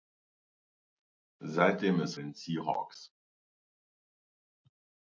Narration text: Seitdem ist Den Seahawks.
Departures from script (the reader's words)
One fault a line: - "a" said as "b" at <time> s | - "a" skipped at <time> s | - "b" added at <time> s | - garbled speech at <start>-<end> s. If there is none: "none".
none